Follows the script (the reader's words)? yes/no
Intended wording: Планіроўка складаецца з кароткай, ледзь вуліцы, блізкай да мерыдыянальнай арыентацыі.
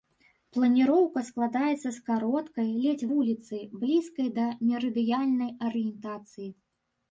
yes